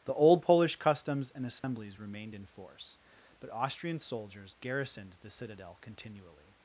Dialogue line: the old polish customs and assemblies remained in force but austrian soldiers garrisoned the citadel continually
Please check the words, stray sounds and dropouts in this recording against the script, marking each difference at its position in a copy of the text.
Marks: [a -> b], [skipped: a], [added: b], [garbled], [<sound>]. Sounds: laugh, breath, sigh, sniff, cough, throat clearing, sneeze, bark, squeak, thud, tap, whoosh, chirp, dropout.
the old polish customs and assemblies [dropout] remained in force but austrian soldiers garrisoned the citadel continually